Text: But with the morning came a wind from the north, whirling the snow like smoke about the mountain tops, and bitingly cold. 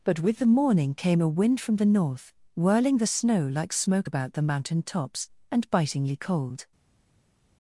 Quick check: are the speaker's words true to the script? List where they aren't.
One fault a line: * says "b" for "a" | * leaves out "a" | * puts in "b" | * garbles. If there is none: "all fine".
all fine